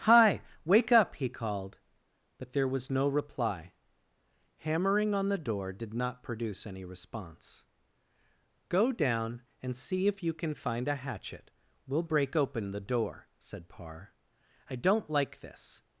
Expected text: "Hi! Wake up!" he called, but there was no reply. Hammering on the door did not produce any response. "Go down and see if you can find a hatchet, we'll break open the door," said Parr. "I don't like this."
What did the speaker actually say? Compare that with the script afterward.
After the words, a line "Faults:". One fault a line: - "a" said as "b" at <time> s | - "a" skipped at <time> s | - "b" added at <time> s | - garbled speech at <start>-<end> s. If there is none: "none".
"Hi! Wake up!" he called, but there was no reply. Hammering on the door did not produce any response. "Go down and see if you can find a hatchet, we'll break open the door," said Parr. "I don't like this."
Faults:
none